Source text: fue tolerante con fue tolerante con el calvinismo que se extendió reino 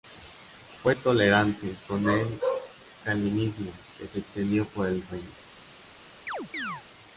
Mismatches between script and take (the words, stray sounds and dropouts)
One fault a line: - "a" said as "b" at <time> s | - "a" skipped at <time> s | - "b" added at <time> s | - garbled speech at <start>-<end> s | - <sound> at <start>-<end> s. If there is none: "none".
- "fue tolerante con" skipped at 2.1 s
- "por el" added at 4.7 s
- chirp at 6.3-6.8 s